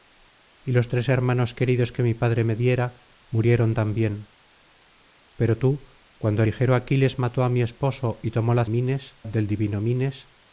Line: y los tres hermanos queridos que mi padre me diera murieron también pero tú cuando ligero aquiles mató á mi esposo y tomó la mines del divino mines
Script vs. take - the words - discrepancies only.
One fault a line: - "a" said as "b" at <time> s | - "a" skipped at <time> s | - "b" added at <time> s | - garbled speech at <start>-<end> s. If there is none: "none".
none